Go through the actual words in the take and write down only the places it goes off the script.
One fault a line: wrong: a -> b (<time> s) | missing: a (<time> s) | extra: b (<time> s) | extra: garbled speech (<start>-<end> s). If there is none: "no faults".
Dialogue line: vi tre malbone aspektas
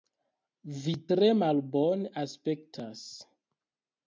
no faults